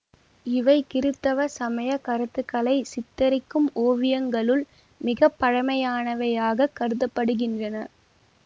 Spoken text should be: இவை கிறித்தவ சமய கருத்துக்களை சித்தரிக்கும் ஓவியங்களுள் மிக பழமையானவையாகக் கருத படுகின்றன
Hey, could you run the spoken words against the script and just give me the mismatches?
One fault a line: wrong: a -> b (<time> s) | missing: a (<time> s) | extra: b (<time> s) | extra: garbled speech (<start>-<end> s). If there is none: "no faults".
no faults